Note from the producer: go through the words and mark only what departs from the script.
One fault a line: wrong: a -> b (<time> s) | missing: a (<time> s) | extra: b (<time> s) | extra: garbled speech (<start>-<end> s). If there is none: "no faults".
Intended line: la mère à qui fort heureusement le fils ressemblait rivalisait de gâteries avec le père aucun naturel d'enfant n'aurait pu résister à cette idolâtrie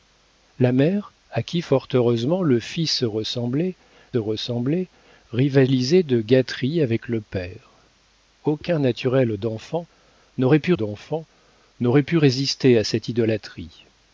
extra: ressemblait (4.2 s)
extra: d'enfant n'aurait pu (10.7 s)